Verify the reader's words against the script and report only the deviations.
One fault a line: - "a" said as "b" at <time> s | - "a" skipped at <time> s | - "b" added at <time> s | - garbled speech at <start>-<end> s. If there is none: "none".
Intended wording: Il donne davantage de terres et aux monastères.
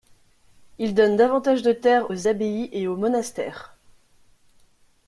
- "aux abbayes" added at 2.1 s